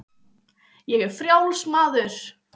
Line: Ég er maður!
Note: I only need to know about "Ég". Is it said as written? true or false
true